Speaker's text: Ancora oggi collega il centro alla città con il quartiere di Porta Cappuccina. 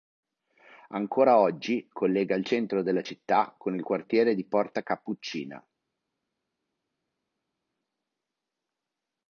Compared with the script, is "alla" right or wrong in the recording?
wrong